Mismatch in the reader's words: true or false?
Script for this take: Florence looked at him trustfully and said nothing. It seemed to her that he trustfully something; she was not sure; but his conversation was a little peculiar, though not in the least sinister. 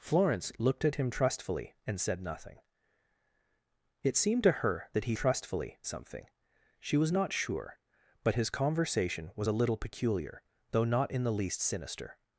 false